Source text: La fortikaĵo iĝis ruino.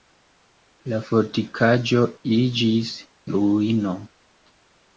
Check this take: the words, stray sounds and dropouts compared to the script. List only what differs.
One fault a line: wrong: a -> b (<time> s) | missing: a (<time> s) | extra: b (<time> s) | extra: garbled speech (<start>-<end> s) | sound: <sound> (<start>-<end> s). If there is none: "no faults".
no faults